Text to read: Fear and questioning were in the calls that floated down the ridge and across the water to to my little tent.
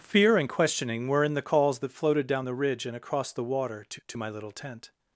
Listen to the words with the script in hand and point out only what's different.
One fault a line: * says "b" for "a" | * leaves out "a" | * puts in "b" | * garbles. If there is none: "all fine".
all fine